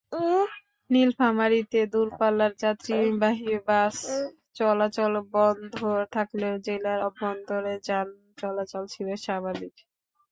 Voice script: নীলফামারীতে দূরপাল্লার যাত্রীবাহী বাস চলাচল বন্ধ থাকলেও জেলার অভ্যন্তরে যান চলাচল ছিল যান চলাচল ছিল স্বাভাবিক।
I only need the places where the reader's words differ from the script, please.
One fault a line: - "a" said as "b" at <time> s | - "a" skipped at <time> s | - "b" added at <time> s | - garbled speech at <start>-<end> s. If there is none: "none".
- "যান চলাচল ছিল" skipped at 9.1 s